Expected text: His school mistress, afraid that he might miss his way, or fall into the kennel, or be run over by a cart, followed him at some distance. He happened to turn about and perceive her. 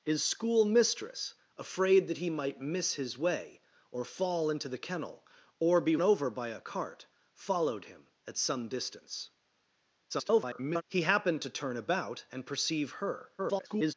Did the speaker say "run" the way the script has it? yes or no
no